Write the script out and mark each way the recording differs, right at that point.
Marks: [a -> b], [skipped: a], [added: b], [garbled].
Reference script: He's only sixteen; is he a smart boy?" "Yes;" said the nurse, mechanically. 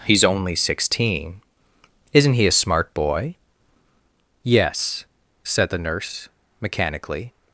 He's only sixteen; [is -> isn't] he a smart boy?" "Yes;" said the nurse, mechanically.